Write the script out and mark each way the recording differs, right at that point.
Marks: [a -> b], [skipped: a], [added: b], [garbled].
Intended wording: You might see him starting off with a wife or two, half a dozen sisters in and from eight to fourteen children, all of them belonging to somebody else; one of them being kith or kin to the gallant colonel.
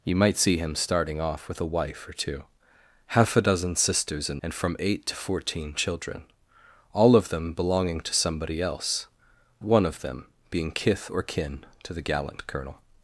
You might see him starting off with a wife or two, half a dozen sisters in and from eight to fourteen children, all of them belonging to somebody else; one of them being kith or kin to the gallant colonel.